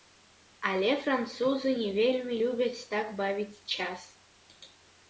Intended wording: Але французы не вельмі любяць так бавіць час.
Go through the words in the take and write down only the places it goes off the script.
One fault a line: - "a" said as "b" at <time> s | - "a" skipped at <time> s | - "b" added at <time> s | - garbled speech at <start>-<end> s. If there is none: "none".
none